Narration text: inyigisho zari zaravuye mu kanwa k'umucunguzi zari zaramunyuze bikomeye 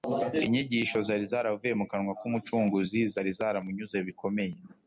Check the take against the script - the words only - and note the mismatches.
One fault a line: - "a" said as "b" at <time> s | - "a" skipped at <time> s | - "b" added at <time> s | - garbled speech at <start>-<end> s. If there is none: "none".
none